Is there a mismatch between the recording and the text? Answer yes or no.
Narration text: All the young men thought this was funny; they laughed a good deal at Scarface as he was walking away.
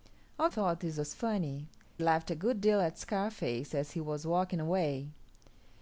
yes